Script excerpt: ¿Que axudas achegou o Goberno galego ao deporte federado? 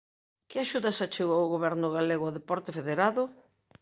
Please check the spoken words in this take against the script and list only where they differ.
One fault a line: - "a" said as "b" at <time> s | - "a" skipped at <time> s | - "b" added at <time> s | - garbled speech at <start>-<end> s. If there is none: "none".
none